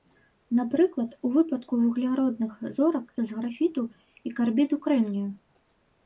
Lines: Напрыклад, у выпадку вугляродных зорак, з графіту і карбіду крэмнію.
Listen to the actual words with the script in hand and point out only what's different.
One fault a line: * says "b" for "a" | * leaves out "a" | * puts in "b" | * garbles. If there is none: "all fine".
all fine